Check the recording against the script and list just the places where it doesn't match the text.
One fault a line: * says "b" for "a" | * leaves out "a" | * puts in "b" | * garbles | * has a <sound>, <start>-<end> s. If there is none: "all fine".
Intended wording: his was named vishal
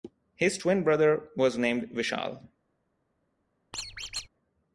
* puts in "twin brother"
* has a squeak, 3.7-4.3 s